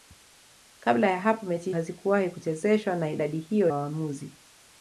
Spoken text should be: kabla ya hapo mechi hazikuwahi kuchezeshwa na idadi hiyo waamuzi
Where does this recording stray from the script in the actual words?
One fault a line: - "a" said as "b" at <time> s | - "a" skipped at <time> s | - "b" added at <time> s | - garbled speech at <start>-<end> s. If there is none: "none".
none